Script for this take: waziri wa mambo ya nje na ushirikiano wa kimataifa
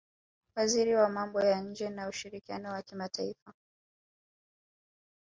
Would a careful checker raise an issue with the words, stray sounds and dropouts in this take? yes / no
no